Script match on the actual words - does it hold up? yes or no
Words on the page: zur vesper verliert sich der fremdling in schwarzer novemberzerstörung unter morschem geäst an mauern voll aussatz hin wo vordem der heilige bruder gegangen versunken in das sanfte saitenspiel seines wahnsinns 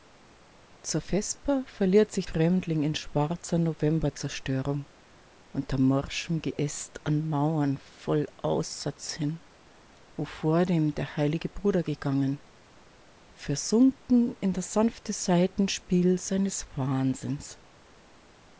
no